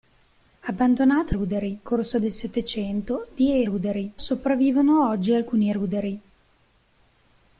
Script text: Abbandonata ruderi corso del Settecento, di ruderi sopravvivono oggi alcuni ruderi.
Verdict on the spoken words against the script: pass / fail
pass